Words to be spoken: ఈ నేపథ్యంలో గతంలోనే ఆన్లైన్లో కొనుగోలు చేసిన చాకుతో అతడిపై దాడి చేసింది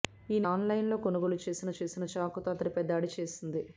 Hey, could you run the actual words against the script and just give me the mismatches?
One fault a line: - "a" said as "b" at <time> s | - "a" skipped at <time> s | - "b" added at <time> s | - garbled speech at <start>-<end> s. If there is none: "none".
- "నేపథ్యంలో గతంలోనే" skipped at 0.5 s
- "చేసిన" added at 1.8 s